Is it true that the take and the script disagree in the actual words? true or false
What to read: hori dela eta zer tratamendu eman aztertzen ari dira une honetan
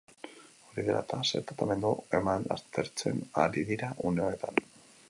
false